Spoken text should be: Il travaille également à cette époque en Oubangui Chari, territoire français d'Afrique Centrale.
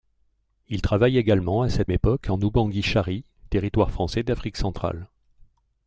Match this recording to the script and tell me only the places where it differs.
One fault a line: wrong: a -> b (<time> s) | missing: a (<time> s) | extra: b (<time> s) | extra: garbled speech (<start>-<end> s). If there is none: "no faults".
no faults